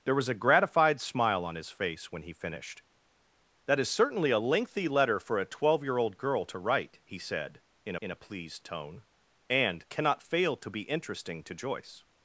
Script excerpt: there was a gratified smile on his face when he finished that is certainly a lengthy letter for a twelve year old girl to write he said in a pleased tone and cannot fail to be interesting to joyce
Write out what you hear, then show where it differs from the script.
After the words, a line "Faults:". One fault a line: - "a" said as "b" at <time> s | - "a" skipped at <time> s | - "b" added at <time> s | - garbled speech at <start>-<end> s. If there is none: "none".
there was a gratified smile on his face when he finished that is certainly a lengthy letter for a twelve year old girl to write he said in in a pleased tone and cannot fail to be interesting to joyce
Faults:
- "in" added at 8.0 s